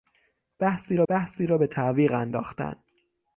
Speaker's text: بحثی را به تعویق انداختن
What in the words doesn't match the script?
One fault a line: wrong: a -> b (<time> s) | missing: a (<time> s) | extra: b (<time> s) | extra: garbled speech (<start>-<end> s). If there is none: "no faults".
extra: بحثی را (1.1 s)